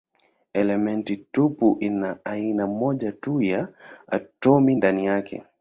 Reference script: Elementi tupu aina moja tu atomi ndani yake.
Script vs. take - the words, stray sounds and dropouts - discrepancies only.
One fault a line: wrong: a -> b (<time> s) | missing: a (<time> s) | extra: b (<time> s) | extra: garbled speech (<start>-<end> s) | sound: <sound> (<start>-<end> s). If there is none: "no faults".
extra: ina (1.8 s)
extra: ya (3.4 s)